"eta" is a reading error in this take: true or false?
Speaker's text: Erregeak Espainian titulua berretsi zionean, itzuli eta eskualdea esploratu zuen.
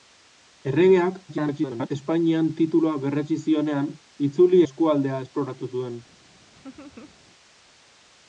true